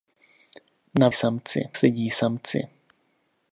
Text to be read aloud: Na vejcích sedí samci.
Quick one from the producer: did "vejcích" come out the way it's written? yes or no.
no